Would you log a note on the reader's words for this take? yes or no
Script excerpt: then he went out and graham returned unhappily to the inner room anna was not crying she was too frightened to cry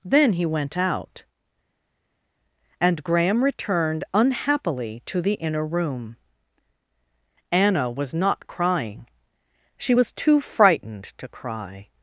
no